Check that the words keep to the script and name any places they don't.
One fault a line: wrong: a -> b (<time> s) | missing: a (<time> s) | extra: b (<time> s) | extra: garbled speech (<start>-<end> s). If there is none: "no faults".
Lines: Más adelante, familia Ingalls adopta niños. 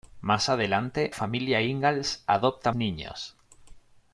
no faults